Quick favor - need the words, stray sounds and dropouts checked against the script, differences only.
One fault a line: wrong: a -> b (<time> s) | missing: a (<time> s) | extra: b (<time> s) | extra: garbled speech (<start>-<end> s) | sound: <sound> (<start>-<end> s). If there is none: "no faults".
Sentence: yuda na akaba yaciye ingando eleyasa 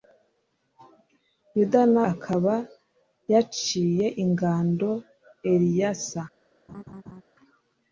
sound: laugh (6.7-7.2 s)